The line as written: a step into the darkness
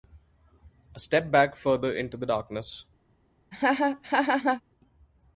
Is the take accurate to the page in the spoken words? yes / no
no